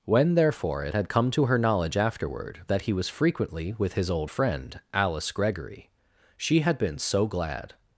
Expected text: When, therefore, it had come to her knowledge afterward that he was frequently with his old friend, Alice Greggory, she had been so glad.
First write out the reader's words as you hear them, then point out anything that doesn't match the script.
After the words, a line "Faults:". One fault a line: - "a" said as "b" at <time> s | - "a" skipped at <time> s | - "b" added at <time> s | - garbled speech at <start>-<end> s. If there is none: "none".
When, therefore, it had come to her knowledge afterward that he was frequently with his old friend, Alice Greggory, she had been so glad.
Faults:
none